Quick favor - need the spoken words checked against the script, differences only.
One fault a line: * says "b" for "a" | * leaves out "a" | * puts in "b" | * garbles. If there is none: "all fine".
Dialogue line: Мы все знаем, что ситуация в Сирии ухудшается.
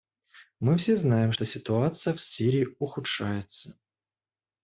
all fine